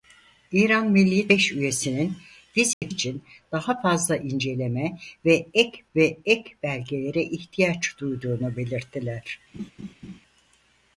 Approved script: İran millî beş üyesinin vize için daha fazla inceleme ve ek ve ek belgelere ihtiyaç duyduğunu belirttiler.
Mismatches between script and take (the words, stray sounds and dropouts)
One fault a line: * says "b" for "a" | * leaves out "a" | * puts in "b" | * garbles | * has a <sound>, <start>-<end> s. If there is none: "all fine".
* has a dropout, 2.7-2.8 s
* has a laugh, 9.5-10.2 s